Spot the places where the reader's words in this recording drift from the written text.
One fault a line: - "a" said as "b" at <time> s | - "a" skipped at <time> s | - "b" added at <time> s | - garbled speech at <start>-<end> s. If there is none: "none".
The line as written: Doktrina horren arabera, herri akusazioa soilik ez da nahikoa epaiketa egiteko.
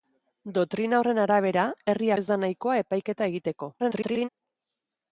- "akusazioa soilik" skipped at 2.1 s
- garbled speech at 3.8-4.3 s